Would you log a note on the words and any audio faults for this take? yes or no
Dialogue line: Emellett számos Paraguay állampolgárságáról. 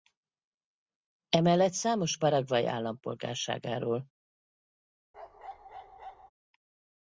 yes